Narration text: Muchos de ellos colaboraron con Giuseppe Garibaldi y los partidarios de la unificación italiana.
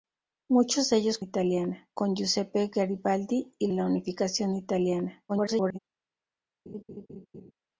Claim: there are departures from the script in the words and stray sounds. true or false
true